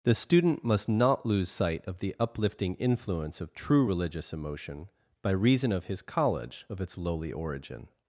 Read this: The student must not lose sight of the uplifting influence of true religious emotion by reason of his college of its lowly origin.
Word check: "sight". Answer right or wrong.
right